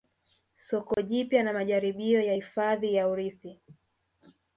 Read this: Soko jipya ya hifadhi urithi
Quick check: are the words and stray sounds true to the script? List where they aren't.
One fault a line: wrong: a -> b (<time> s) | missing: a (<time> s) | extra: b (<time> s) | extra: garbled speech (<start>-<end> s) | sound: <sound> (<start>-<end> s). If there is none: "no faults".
sound: dropout (0.9-1.0 s)
extra: na majaribio (1.4 s)
extra: ya (2.9 s)